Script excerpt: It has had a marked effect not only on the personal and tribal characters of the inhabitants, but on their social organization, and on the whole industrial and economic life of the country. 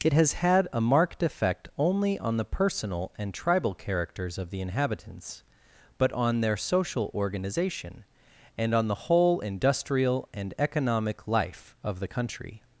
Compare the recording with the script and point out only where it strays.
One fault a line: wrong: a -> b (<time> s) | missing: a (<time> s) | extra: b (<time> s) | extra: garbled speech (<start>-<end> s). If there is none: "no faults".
missing: not (1.7 s)